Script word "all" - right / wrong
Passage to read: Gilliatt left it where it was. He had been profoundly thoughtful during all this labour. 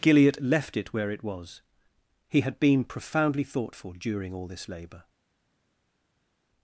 right